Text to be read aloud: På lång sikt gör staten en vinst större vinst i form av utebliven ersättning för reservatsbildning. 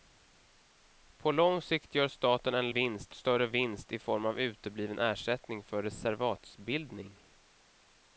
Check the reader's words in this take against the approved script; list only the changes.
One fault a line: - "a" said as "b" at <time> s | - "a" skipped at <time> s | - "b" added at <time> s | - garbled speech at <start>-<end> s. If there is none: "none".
none